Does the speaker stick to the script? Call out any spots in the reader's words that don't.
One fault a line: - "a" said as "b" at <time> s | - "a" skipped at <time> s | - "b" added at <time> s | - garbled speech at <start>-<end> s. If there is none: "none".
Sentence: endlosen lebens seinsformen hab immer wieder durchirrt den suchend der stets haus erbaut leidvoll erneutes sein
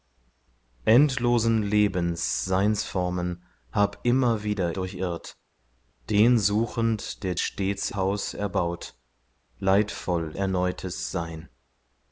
none